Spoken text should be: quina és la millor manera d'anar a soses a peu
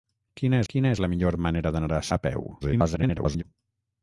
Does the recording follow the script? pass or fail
fail